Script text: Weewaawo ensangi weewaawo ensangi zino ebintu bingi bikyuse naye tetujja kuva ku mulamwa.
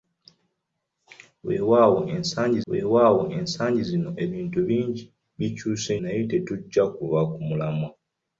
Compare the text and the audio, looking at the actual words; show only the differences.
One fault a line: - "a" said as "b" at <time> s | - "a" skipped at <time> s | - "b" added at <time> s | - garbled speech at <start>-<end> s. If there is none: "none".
none